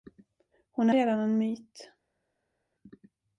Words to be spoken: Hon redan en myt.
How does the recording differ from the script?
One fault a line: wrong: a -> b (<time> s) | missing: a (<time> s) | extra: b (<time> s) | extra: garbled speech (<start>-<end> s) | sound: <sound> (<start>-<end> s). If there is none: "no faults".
no faults